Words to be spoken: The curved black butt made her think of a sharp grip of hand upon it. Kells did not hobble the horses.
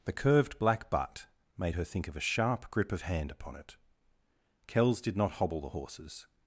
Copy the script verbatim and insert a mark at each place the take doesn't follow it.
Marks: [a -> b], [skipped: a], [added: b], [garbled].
The curved black butt made her think of a sharp grip of hand upon it. Kells did not hobble the horses.